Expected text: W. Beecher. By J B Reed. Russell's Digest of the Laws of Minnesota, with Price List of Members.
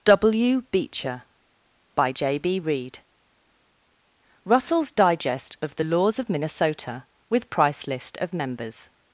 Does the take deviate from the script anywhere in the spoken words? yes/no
no